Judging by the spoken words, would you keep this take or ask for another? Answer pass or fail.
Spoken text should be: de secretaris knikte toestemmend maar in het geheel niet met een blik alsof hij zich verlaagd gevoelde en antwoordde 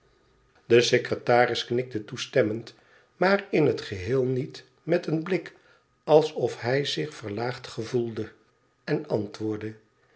pass